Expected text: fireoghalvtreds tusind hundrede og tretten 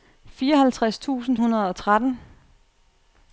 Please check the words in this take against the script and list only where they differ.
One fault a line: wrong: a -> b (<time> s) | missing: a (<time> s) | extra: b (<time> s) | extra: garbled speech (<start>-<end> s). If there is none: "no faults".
no faults